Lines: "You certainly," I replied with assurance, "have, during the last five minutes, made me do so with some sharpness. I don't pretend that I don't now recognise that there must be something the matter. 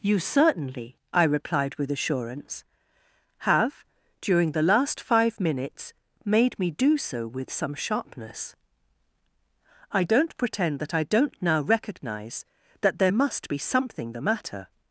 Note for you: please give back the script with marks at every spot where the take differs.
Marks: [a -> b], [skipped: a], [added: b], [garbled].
"You certainly," I replied with assurance, "have, during the last five minutes, made me do so with some sharpness. I don't pretend that I don't now recognise that there must be something the matter.